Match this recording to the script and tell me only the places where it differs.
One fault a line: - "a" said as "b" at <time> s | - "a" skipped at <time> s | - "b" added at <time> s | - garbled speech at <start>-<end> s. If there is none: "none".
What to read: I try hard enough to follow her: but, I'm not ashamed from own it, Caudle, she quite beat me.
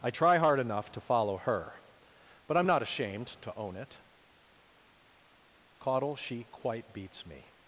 - "from" said as "to" at 3.4 s
- "beat" said as "beats" at 6.9 s